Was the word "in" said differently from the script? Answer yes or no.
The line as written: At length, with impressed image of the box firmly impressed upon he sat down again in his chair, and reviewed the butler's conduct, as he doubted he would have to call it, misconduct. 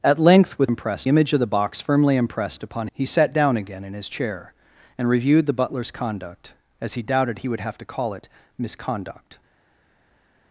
no